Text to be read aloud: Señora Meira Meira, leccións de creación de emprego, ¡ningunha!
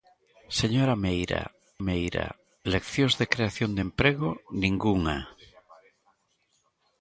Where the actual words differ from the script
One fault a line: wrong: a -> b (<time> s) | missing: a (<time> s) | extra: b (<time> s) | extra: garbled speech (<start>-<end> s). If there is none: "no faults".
no faults